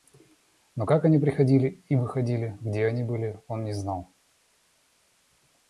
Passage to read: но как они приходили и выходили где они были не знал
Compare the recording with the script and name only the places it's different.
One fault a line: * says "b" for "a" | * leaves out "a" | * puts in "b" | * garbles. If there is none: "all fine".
* puts in "он"